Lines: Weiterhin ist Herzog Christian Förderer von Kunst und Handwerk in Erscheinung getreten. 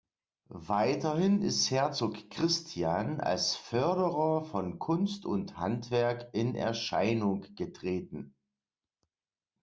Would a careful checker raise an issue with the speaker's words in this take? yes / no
yes